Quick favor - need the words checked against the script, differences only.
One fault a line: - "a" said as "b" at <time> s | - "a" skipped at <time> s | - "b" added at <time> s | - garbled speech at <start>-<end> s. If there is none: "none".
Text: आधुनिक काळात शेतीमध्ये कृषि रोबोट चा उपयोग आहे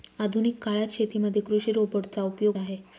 none